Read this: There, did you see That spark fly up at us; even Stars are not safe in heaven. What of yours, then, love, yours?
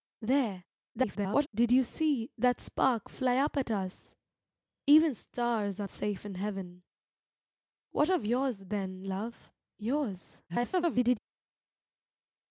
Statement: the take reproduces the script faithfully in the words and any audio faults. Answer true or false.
false